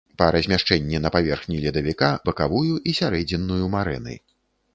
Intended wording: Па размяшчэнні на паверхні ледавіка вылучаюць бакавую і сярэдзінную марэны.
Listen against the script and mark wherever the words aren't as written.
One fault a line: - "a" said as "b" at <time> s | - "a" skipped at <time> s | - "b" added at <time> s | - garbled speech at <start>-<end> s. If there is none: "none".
- "вылучаюць" skipped at 2.1 s